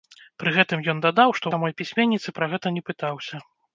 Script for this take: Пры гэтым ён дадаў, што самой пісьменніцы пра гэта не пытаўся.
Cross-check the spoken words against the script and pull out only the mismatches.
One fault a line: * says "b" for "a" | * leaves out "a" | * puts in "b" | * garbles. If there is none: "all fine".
all fine